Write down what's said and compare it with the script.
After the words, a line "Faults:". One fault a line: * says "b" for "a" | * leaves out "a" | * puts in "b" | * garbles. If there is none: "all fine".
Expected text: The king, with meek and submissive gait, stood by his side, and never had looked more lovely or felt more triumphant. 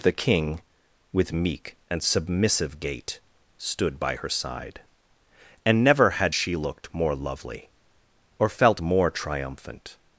The king, with meek and submissive gait, stood by her side, and never had she looked more lovely or felt more triumphant.
Faults:
* says "her" for "his"
* puts in "she"